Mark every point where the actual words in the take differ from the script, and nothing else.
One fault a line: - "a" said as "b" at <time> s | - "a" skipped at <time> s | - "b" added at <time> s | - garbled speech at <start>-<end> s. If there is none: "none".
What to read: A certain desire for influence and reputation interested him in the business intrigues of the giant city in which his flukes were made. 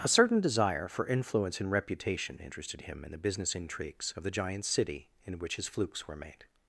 none